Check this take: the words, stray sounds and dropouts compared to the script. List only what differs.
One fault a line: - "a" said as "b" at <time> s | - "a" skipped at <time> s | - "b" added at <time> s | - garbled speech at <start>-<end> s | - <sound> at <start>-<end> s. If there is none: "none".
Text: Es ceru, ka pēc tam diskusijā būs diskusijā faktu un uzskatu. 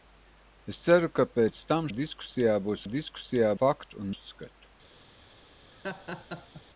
- laugh at 5.7-6.6 s